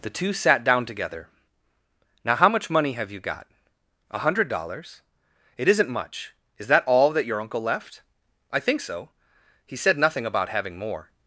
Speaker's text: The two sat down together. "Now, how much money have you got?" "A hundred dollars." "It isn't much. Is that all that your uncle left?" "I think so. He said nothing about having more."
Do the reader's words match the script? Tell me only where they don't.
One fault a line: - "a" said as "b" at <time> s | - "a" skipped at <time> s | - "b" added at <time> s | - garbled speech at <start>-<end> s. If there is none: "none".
none